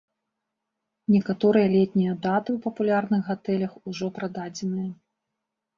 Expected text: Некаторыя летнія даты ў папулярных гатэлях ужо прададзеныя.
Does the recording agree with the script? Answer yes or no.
yes